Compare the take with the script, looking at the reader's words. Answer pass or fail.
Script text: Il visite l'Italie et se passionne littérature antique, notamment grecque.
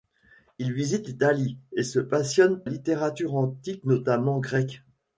pass